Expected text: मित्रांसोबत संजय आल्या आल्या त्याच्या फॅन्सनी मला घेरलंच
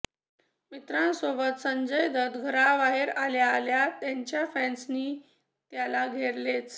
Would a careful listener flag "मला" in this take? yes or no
yes